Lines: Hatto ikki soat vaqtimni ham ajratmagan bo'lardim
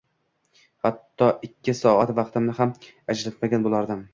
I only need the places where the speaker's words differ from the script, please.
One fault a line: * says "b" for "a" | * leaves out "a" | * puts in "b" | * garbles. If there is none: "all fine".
all fine